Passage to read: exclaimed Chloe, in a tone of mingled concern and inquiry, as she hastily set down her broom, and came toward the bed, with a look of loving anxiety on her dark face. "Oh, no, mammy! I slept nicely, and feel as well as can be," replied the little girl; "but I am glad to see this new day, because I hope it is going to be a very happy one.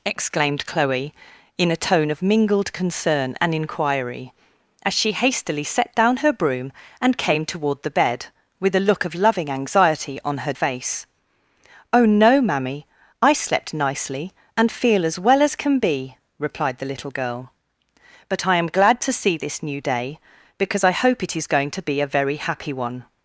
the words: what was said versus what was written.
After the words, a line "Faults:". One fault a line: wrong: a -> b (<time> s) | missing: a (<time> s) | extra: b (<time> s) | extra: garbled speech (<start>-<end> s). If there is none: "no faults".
exclaimed Chloe, in a tone of mingled concern and inquiry, as she hastily set down her broom, and came toward the bed, with a look of loving anxiety on her face. "Oh, no, mammy! I slept nicely, and feel as well as can be," replied the little girl; "but I am glad to see this new day, because I hope it is going to be a very happy one.
Faults:
missing: dark (10.5 s)